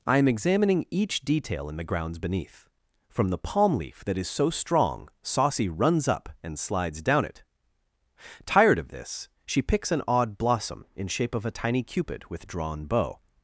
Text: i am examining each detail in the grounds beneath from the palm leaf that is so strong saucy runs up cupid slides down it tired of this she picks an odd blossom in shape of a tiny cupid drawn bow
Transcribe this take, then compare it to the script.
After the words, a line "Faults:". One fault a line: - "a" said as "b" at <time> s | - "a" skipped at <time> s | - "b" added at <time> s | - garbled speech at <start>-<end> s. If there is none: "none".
i am examining each detail in the grounds beneath from the palm leaf that is so strong saucy runs up and slides down it tired of this she picks an odd blossom in shape of a tiny cupid with drawn bow
Faults:
- "cupid" said as "and" at 6.4 s
- "with" added at 12.3 s